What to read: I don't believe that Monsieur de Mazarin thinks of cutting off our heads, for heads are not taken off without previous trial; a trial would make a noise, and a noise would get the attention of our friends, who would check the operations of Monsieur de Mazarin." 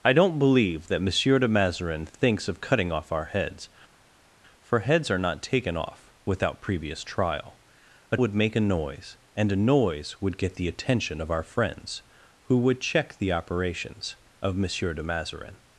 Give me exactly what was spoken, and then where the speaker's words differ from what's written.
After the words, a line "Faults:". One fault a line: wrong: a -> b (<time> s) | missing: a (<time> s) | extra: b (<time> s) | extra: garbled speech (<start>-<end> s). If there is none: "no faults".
I don't believe that Monsieur de Mazarin thinks of cutting off our heads, for heads are not taken off without previous trial; a would make a noise, and a noise would get the attention of our friends, who would check the operations of Monsieur de Mazarin."
Faults:
missing: trial (8.2 s)